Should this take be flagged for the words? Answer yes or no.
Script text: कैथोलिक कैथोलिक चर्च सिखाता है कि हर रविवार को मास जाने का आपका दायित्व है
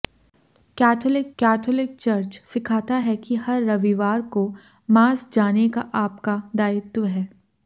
no